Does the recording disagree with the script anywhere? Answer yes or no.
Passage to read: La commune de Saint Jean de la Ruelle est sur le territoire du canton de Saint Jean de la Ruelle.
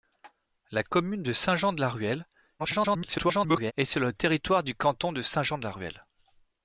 yes